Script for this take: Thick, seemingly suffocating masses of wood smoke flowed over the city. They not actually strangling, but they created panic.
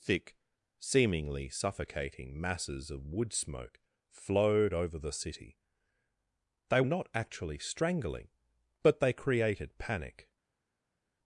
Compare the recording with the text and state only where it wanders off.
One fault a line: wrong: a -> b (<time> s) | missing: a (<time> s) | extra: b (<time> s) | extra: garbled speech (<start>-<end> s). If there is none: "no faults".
no faults